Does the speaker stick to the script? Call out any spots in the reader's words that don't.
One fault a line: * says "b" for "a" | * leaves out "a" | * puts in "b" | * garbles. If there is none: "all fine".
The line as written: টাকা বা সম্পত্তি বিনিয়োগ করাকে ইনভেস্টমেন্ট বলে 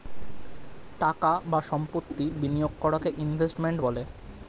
all fine